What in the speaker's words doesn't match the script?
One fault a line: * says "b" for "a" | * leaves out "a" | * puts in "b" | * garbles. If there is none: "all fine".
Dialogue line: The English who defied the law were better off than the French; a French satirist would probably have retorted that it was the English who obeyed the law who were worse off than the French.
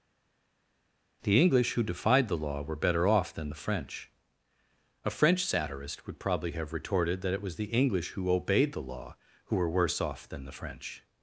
all fine